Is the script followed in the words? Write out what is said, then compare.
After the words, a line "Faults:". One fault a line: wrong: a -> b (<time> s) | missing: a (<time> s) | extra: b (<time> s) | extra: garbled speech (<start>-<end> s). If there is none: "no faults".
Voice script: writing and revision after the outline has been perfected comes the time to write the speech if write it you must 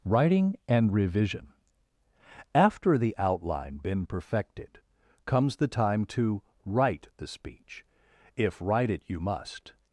writing and revision after the outline been perfected comes the time to write the speech if write it you must
Faults:
missing: has (3.8 s)